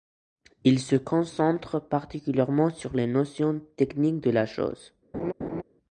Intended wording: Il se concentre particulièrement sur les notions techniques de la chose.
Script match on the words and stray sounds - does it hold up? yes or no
no